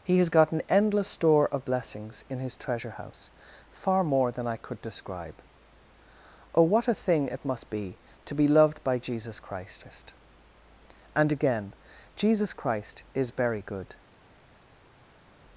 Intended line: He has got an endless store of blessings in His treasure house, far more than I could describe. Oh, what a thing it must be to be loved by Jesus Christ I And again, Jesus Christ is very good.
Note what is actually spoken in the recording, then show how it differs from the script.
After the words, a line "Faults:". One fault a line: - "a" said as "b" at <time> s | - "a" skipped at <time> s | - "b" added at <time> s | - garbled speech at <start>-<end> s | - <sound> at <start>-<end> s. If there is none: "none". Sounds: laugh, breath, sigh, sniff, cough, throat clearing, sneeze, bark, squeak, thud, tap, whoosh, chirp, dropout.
He has got an endless store of blessings in His treasure house, far more than I could describe. Oh, what a thing it must be to be loved by Jesus Christ And again, Jesus Christ is very good.
Faults:
- "I" skipped at 10.1 s